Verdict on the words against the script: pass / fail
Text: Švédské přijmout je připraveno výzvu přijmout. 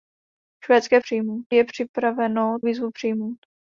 pass